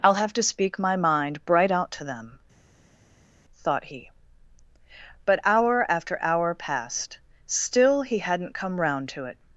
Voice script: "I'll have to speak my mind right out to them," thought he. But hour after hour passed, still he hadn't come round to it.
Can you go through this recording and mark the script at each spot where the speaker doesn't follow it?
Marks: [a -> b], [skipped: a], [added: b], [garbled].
"I'll have to speak my mind [right -> bright] out to them," thought he. But hour after hour passed, still he hadn't come round to it.